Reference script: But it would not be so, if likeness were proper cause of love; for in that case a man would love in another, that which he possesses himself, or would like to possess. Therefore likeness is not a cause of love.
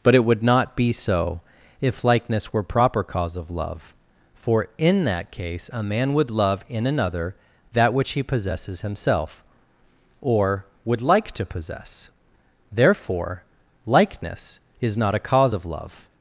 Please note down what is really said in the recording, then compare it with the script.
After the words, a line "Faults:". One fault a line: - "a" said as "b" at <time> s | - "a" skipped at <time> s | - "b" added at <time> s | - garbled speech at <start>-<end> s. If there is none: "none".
But it would not be so, if likeness were proper cause of love; for in that case a man would love in another, that which he possesses himself, or would like to possess. Therefore likeness is not a cause of love.
Faults:
none